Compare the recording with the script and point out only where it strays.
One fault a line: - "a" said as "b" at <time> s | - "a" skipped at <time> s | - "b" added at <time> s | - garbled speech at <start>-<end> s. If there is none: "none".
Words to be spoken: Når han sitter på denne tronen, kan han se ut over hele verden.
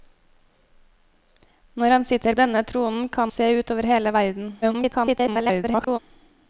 - "på" skipped at 2.4 s
- "han" skipped at 3.3 s
- garbled speech at 4.6-6.0 s